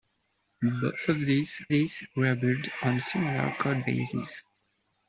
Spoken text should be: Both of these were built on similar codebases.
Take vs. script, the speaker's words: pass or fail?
fail